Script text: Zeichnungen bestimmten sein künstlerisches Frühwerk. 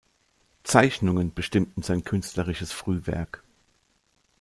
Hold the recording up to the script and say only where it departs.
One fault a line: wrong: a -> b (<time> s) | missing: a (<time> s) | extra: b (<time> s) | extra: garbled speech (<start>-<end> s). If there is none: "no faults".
no faults